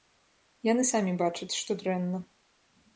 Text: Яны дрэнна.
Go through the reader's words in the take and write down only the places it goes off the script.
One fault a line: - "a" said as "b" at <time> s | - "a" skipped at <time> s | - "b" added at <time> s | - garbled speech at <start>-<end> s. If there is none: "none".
- "самі бачаць што" added at 0.9 s